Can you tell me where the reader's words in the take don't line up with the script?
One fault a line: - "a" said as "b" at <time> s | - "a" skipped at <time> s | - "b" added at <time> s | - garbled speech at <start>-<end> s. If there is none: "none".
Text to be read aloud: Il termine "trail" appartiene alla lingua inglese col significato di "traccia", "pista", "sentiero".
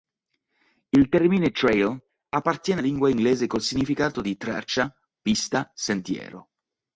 - "alla" skipped at 2.8 s